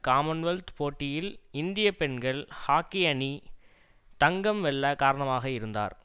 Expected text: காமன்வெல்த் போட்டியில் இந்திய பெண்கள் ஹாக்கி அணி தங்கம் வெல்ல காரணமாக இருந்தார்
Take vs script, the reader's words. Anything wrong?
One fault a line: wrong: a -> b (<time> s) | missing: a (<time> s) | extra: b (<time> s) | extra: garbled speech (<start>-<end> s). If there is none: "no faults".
no faults